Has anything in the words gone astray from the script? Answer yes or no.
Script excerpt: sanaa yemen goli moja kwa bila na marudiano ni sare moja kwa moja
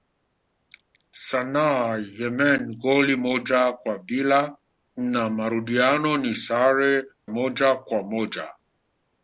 no